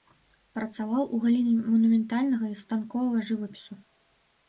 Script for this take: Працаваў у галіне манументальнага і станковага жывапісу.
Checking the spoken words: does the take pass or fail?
pass